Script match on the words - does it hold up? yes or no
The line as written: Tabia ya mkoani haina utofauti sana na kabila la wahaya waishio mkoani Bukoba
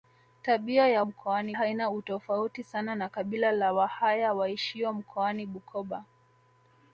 yes